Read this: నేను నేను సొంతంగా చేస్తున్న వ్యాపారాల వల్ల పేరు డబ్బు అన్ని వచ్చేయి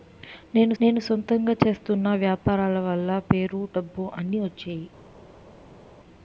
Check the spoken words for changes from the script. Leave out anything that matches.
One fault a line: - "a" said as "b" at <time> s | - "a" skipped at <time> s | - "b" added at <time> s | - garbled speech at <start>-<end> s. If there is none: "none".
none